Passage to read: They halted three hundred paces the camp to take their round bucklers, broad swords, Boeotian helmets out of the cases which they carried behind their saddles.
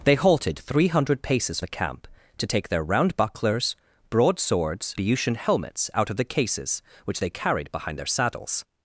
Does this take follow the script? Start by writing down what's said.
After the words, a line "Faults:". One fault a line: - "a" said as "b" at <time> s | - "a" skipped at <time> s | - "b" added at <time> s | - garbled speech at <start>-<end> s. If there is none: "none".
They halted three hundred paces the camp to take their round bucklers, broad swords, Boeotian helmets out of the cases which they carried behind their saddles.
Faults:
none